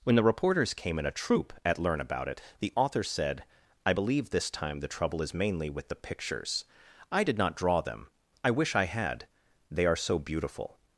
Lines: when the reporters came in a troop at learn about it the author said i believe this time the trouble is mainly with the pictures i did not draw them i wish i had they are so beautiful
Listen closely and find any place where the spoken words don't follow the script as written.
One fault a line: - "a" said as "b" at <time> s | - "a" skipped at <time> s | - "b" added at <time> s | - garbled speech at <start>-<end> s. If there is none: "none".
none